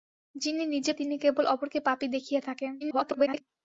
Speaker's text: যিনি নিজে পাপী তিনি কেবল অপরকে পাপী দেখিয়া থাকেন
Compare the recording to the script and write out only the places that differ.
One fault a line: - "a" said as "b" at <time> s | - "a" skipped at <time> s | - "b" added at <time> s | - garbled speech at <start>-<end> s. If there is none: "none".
- "পাপী" skipped at 0.9 s
- garbled speech at 2.8-3.4 s